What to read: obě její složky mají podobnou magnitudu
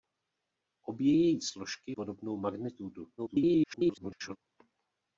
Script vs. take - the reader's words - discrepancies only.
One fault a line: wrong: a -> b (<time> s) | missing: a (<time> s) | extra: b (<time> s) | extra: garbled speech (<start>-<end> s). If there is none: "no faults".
missing: mají (1.9 s)
extra: garbled speech (3.2-4.4 s)